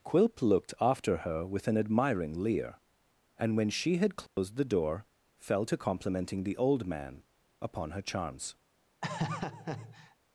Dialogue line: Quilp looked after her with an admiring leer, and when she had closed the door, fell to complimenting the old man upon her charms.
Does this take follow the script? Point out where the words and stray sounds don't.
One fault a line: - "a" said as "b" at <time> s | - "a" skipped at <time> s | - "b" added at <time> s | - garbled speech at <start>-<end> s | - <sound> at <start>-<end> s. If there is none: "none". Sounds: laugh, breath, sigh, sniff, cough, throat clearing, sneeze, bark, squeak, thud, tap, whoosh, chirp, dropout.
- dropout at 4.3-4.4 s
- laugh at 9.0-10.2 s